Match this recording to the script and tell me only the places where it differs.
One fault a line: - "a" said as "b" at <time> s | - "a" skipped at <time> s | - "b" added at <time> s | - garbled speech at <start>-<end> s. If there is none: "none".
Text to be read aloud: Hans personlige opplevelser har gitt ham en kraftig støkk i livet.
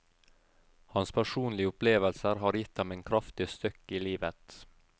none